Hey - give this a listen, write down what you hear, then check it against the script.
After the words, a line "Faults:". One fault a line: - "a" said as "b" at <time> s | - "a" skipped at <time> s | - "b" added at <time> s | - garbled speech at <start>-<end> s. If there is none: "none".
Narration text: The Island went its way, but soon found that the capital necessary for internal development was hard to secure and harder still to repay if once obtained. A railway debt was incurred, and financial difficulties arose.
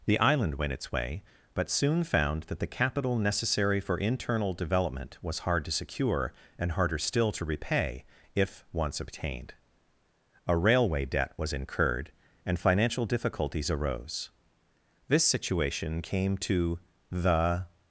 The Island went its way, but soon found that the capital necessary for internal development was hard to secure and harder still to repay if once obtained. A railway debt was incurred, and financial difficulties arose. This situation came to the
Faults:
- "This situation came to the" added at 15.1 s